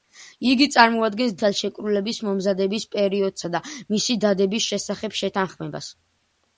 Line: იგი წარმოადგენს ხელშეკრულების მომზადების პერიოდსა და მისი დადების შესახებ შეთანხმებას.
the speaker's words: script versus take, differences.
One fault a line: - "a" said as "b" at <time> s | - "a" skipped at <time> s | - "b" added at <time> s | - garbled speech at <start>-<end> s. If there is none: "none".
none